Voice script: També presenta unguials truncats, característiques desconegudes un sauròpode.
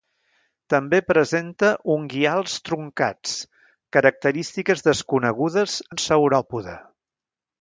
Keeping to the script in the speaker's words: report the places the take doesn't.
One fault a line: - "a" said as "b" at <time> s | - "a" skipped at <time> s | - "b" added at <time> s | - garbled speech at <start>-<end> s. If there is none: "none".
none